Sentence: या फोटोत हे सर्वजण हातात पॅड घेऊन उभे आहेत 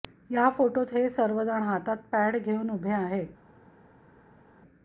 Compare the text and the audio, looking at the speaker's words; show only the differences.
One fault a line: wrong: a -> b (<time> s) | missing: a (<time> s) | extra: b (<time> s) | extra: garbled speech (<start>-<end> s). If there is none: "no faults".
no faults